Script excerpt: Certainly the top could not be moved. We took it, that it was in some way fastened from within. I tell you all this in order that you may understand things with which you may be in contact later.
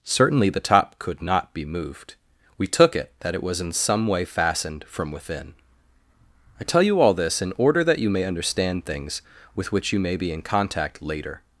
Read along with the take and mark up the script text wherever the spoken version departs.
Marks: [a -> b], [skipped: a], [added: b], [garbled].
Certainly the top could not be moved. We took it, that it was in some way fastened from within. I tell you all this in order that you may understand things with which you may be in contact later.